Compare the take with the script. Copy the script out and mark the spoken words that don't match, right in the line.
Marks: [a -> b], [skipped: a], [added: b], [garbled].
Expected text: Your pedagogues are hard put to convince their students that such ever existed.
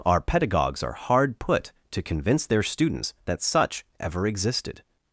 [Your -> Our] pedagogues are hard put to convince their students that such ever existed.